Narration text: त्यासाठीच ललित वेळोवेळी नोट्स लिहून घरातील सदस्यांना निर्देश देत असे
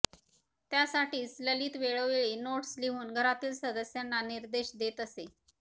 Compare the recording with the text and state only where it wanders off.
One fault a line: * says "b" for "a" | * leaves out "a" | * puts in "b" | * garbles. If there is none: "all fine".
all fine